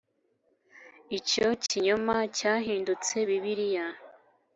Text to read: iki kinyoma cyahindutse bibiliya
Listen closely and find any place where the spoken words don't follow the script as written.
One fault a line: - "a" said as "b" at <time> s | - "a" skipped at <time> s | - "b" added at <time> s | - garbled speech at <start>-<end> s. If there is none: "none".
- "iki" said as "icyo" at 1.2 s